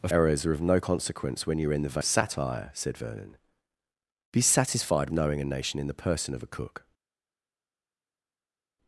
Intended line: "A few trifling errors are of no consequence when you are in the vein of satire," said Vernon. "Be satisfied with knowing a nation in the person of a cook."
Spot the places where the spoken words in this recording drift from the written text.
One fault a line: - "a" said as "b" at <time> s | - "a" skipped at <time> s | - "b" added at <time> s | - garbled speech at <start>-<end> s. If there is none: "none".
- "few trifling" skipped at 0.1 s
- "vein" skipped at 2.0 s
- "with" skipped at 5.1 s